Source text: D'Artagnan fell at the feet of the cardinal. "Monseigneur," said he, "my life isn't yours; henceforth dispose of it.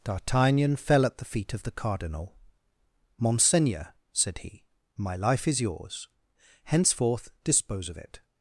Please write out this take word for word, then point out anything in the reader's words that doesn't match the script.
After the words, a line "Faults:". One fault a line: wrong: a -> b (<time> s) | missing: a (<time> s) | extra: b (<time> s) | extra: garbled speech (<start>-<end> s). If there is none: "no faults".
D'Artagnan fell at the feet of the cardinal. "Monseigneur," said he, "my life is yours; henceforth dispose of it.
Faults:
wrong: isn't -> is (5.5 s)